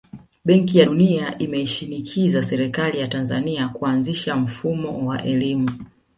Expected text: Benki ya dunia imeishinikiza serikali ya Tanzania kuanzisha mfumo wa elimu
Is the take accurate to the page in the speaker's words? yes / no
yes